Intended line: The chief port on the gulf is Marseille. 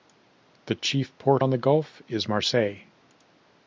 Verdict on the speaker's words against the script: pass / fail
pass